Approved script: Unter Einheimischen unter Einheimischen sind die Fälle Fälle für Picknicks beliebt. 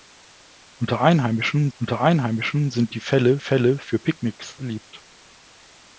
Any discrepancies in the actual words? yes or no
no